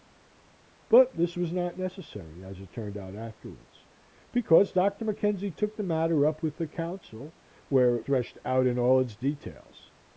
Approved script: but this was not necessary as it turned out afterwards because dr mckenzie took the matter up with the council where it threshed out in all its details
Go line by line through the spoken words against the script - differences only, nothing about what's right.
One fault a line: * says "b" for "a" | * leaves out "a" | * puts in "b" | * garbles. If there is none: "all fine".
all fine